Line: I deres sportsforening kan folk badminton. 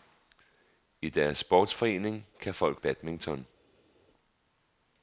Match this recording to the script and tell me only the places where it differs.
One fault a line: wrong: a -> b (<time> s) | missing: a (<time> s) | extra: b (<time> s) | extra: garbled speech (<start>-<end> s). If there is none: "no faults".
no faults